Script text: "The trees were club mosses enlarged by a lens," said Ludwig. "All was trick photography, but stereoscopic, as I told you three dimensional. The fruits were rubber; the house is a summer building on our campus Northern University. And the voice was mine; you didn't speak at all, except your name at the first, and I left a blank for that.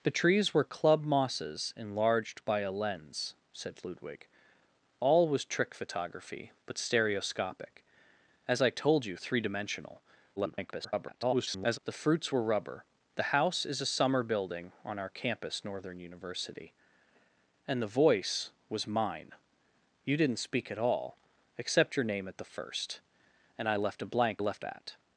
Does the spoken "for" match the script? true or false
false